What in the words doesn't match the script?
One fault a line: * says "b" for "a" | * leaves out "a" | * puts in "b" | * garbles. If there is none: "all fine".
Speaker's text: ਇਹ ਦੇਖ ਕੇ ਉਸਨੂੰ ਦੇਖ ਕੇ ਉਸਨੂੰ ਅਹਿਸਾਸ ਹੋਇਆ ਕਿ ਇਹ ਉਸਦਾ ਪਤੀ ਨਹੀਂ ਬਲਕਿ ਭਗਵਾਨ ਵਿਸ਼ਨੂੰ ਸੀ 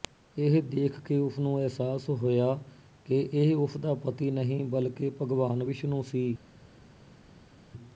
* leaves out "ਦੇਖ ਕੇ ਉਸਨੂੰ"